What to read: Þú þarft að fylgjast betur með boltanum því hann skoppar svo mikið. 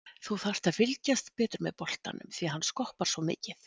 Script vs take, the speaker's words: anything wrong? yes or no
no